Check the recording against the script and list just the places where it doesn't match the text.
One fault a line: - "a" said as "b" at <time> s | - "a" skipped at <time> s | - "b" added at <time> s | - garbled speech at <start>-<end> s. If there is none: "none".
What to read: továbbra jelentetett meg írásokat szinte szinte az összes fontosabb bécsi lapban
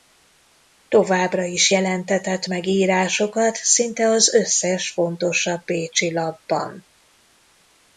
- "is" added at 1.4 s
- "szinte" skipped at 4.1 s